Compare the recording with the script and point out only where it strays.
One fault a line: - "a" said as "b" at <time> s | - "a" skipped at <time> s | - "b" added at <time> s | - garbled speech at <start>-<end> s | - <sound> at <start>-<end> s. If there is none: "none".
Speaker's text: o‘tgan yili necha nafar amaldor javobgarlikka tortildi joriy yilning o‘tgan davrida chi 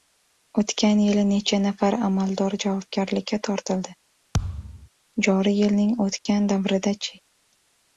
- thud at 4.3-4.9 s
- dropout at 6.2-6.3 s